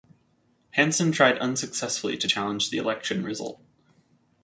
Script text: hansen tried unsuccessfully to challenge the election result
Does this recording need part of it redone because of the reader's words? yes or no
no